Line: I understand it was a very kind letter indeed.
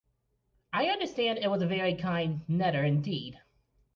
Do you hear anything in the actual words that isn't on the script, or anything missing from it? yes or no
no